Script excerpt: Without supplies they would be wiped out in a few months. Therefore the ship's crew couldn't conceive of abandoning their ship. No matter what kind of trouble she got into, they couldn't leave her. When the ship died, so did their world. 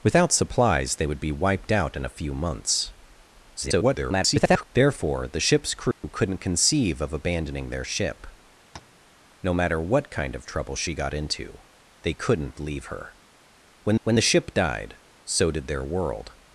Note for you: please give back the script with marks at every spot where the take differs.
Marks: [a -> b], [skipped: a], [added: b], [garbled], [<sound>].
Without supplies they would be wiped out in a few months. [garbled] Therefore the ship's crew [dropout] couldn't conceive of abandoning their ship. [tap] No matter what kind of trouble she got into, they couldn't leave her. When [added: when] the ship died, so did their world.